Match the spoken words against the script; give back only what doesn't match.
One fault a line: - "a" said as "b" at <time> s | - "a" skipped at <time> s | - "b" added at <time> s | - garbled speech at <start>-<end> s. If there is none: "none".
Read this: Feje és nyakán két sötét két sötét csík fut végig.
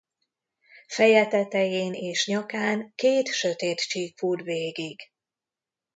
- "tetején" added at 1.3 s
- "két sötét" skipped at 3.8 s